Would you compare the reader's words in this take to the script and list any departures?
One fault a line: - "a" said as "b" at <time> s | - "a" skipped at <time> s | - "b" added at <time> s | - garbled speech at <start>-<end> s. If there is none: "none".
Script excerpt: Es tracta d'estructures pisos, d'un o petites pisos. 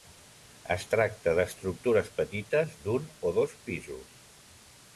- "pisos" said as "petites" at 2.2 s
- "petites" said as "dos" at 3.4 s